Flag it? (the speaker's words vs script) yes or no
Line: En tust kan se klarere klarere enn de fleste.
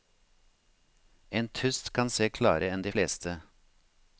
yes